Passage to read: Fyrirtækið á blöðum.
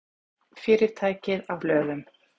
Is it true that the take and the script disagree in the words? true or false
false